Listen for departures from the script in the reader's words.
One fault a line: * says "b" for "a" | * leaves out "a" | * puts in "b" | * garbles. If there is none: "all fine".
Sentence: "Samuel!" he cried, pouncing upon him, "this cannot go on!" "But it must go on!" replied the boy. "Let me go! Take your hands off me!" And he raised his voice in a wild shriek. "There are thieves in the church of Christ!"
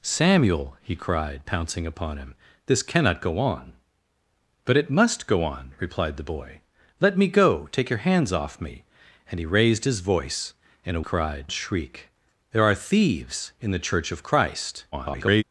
* says "cried" for "wild"
* garbles